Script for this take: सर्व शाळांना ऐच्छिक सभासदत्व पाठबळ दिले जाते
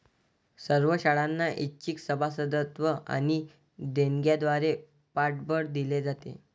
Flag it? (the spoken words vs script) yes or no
yes